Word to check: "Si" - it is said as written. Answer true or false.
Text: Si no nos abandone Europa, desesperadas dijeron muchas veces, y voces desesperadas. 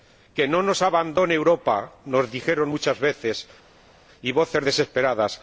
false